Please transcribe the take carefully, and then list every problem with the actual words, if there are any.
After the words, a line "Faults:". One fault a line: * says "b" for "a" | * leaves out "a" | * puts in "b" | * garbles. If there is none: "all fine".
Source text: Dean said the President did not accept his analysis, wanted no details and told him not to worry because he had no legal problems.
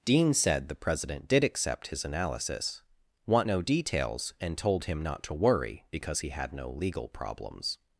Dean said the President did accept his analysis, want no details and told him not to worry because he had no legal problems.
Faults:
* leaves out "not"
* says "want" for "wanted"